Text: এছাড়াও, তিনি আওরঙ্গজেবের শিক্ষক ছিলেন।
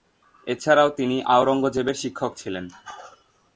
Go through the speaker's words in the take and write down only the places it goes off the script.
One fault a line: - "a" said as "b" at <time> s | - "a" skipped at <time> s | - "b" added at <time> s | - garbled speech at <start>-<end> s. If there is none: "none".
none